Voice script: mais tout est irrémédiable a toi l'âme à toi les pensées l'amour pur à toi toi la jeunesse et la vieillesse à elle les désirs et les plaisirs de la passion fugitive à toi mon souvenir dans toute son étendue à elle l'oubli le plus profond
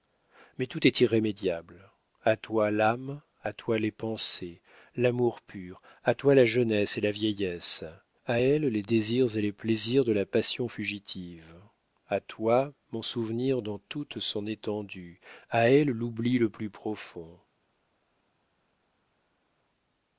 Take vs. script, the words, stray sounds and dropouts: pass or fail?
fail